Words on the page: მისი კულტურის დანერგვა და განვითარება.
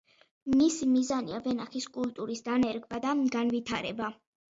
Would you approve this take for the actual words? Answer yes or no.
no